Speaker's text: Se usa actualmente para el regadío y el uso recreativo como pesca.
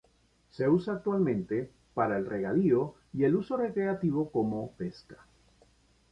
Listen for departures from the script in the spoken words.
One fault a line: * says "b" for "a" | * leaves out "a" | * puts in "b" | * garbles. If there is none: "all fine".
all fine